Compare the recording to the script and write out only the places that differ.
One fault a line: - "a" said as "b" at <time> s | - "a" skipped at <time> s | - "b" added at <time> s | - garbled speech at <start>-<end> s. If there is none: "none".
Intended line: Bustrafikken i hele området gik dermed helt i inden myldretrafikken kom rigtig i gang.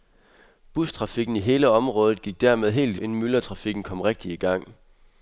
none